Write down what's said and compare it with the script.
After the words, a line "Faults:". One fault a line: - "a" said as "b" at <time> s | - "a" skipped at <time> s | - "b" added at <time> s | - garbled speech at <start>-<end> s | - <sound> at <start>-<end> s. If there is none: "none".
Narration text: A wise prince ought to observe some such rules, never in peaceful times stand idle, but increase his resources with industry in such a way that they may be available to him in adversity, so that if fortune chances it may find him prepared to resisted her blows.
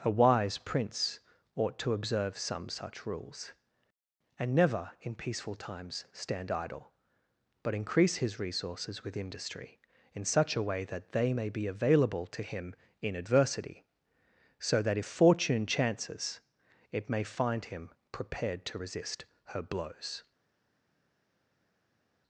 A wise prince ought to observe some such rules, and never in peaceful times stand idle, but increase his resources with industry in such a way that they may be available to him in adversity, so that if fortune chances it may find him prepared to resist her blows.
Faults:
- "and" added at 4.4 s
- "resisted" said as "resist" at 18.8 s